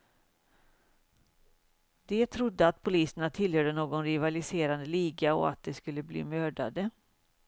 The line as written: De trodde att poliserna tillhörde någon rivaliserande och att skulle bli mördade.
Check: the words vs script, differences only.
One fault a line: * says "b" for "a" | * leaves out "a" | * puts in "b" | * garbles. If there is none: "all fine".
* puts in "liga"
* puts in "de"